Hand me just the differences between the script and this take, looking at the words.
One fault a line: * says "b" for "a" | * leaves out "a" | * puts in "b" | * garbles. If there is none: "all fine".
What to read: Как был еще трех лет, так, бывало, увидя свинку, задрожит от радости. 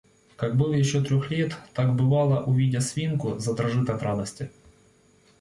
all fine